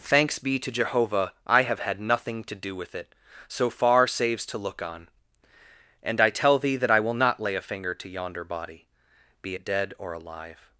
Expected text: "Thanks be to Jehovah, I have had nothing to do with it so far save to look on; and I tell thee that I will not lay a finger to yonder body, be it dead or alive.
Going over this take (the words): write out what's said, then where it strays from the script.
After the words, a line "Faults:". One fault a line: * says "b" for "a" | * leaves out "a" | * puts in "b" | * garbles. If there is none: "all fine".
"Thanks be to Jehovah, I have had nothing to do with it so far saves to look on; and I tell thee that I will not lay a finger to yonder body, be it dead or alive.
Faults:
* says "saves" for "save"